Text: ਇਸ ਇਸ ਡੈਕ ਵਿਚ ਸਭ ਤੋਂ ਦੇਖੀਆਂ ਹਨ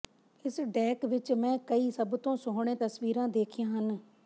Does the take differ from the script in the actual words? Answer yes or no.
yes